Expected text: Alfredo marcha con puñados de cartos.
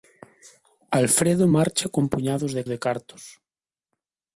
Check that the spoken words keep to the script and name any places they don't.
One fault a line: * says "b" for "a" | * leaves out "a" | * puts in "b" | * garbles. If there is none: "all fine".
* puts in "de"